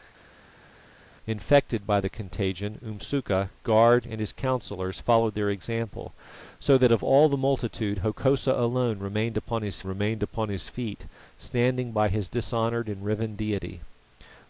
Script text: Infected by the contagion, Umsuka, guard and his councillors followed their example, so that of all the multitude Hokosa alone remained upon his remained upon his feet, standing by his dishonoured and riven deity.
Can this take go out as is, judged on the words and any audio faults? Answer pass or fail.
pass